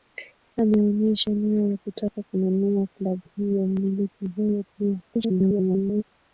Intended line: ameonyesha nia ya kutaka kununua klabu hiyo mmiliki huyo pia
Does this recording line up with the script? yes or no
no